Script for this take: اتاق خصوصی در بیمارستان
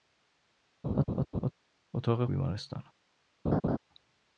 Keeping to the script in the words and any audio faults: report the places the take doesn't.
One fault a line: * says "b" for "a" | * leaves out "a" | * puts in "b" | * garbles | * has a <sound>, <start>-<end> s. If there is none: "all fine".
* has a laugh, 0.8-1.5 s
* leaves out "خصوصی در"
* has a laugh, 3.4-3.8 s